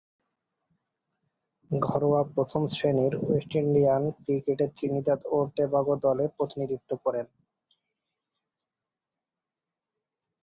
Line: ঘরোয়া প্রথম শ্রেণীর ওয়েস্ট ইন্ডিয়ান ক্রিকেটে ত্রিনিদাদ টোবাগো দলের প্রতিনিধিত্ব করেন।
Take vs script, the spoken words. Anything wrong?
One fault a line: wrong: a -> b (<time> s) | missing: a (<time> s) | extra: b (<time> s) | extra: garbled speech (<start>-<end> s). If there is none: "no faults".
extra: ও (5.2 s)